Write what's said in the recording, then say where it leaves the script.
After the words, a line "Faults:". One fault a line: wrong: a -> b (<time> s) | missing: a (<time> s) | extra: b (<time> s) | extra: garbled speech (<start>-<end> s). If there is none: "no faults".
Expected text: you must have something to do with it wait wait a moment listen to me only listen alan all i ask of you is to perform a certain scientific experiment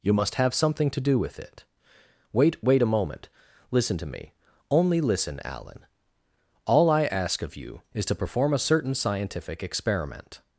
you must have something to do with it wait wait a moment listen to me only listen alan all i ask of you is to perform a certain scientific experiment
Faults:
no faults